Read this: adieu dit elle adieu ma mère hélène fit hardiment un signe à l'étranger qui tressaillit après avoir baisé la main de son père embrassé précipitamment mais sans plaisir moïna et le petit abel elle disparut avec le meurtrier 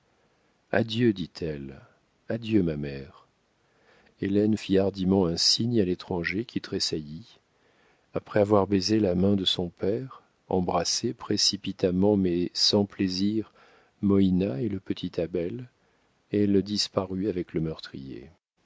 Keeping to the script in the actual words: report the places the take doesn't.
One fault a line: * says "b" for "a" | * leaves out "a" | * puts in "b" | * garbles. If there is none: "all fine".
all fine